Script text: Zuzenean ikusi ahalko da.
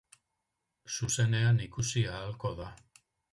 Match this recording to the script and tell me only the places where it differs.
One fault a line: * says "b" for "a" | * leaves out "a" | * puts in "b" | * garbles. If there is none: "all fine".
all fine